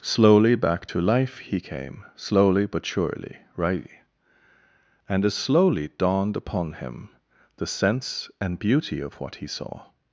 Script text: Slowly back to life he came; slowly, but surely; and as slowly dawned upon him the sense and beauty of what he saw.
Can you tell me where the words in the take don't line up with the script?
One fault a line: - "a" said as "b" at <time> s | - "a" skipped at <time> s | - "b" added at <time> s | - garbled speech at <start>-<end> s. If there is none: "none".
- "right" added at 3.6 s